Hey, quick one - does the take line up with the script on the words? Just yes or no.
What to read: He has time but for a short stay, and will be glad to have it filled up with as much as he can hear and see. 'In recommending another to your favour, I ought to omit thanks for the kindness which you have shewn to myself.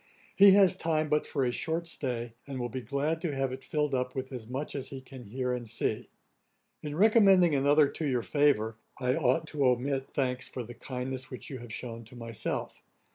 yes